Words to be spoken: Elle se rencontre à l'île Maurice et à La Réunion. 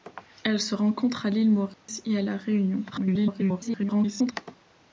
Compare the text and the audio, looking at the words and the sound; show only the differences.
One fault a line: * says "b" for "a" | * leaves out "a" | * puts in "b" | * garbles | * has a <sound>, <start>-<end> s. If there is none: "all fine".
* has a dropout, 1.7-1.9 s
* garbles